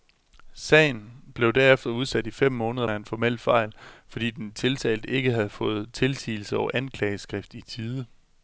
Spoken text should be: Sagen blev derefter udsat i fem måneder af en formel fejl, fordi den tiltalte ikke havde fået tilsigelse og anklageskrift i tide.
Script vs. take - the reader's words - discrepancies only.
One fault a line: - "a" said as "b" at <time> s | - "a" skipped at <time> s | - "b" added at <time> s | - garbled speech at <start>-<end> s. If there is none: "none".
none